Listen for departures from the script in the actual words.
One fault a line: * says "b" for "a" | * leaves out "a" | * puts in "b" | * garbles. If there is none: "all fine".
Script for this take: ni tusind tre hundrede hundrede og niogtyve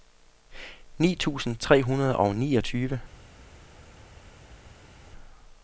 * leaves out "hundrede"